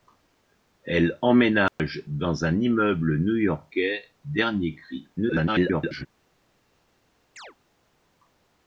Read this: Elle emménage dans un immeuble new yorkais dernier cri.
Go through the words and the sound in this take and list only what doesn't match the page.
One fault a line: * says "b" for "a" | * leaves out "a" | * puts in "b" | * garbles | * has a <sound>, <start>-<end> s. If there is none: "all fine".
* has a dropout, 1.7-1.8 s
* garbles
* has a chirp, 7.4-7.6 s